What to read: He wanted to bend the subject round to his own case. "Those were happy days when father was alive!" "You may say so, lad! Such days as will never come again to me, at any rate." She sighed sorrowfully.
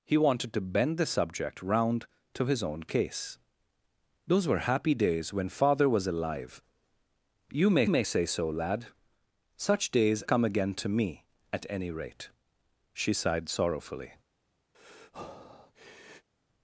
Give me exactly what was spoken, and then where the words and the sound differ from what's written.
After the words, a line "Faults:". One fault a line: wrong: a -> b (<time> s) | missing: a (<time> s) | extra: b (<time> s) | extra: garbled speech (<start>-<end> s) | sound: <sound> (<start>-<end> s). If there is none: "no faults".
He wanted to bend the subject round to his own case. "Those were happy days when father was alive!" "You may may say so, lad! Such days come again to me, at any rate." She sighed sorrowfully.
Faults:
extra: may (7.9 s)
missing: as will never (10.2 s)
sound: breath (14.7-16.3 s)